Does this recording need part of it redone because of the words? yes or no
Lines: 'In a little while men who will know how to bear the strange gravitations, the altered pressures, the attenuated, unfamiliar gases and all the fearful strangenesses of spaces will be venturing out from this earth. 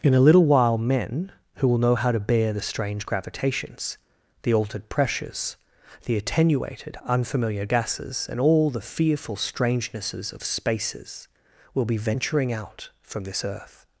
no